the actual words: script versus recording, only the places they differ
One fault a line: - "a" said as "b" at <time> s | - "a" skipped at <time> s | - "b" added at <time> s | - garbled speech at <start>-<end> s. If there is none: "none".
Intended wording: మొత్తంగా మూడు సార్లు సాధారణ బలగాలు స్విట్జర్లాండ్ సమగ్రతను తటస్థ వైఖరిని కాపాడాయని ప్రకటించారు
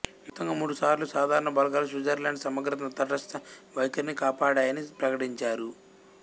none